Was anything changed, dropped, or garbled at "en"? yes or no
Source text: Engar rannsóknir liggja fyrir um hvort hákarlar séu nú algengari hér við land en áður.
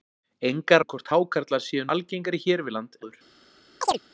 yes